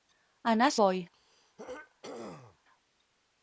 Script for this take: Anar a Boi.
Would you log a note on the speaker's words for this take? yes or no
no